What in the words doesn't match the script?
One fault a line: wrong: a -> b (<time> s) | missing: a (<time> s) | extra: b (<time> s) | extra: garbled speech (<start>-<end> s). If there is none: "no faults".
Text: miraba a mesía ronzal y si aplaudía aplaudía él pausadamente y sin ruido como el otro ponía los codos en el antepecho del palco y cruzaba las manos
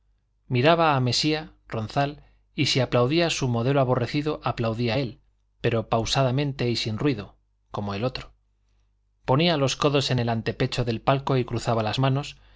extra: su modelo aborrecido (3.3 s)
extra: pero (5.6 s)